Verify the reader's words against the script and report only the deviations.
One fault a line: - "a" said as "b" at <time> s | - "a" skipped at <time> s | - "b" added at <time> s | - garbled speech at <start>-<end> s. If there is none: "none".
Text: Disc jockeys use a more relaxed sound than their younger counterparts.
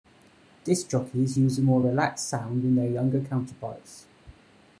none